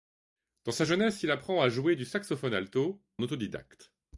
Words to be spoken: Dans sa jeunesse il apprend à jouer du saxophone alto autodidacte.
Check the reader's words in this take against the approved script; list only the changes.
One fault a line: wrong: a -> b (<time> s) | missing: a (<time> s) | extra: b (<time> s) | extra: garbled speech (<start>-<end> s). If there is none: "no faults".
no faults